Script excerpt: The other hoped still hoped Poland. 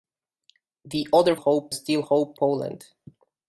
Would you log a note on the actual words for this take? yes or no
no